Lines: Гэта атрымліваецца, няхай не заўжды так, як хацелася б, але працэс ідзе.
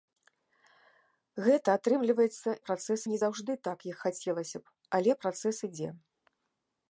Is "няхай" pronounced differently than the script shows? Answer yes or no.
yes